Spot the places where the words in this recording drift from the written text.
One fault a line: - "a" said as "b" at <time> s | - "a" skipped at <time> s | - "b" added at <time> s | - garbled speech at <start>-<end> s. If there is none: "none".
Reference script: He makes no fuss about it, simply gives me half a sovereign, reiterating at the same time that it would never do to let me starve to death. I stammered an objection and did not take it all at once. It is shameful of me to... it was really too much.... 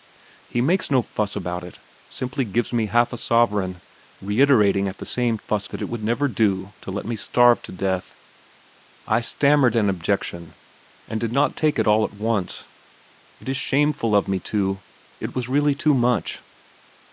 - "time" said as "fuss" at 5.4 s